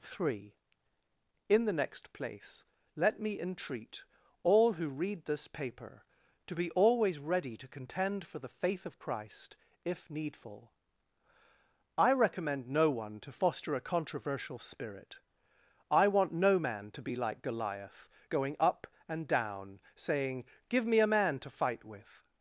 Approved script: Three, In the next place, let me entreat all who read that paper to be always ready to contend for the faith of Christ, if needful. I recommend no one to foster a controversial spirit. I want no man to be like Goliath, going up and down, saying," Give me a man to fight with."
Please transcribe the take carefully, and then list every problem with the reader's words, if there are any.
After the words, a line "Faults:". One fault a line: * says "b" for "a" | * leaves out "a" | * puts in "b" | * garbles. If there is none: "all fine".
Three, In the next place, let me entreat all who read this paper to be always ready to contend for the faith of Christ, if needful. I recommend no one to foster a controversial spirit. I want no man to be like Goliath, going up and down, saying," Give me a man to fight with."
Faults:
* says "this" for "that"